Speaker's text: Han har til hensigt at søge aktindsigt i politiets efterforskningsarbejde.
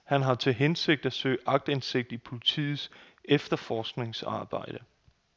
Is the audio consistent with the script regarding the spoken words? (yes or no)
yes